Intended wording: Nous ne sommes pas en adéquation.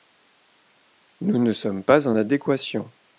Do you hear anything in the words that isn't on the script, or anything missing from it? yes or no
no